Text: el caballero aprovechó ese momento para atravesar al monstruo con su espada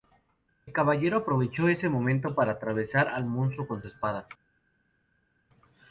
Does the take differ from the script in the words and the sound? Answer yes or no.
no